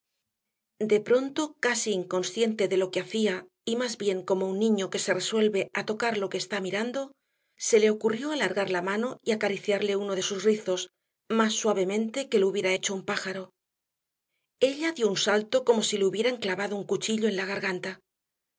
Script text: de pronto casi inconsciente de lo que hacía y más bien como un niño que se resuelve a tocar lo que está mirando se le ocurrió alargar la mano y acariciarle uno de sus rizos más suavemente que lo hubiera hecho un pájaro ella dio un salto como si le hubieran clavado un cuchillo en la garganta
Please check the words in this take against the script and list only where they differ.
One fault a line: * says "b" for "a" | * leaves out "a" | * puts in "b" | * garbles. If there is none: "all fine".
all fine